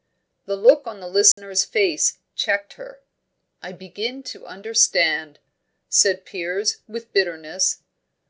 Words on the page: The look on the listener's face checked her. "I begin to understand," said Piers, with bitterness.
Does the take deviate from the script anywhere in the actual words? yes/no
no